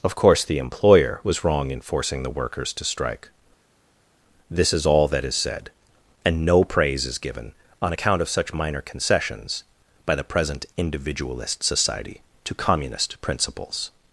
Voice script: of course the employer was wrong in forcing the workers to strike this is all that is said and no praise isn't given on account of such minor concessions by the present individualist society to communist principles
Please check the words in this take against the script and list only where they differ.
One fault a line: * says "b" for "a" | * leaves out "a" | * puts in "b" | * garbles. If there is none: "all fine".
* says "is" for "isn't"